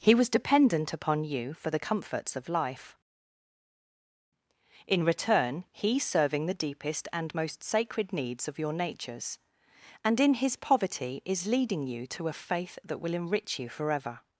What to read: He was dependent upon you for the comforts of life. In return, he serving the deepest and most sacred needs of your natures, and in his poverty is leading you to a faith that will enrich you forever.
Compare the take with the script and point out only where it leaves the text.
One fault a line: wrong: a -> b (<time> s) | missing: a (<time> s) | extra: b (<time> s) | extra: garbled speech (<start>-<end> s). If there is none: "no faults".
no faults